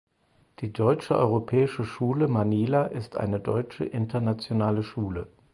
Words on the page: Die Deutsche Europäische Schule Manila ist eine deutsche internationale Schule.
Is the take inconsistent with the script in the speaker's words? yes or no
no